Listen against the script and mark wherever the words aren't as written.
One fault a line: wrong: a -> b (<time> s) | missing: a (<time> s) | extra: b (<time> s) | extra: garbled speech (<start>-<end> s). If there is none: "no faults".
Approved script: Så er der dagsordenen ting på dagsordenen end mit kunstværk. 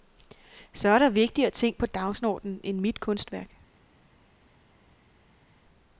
wrong: dagsordenen -> vigtigere (1.1 s)